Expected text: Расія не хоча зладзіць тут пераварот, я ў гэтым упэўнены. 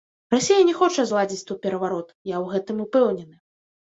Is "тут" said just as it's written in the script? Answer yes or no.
yes